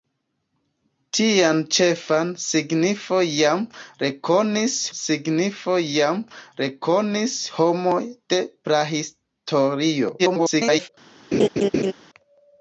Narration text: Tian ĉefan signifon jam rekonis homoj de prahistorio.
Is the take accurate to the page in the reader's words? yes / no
no